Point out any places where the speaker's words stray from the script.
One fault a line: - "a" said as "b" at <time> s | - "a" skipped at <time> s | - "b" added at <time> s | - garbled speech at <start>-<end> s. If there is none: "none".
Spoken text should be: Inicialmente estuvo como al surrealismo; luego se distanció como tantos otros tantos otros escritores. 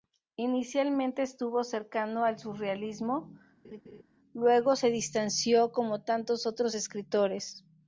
- "como" said as "cercano" at 1.6 s
- "tantos otros" skipped at 6.8 s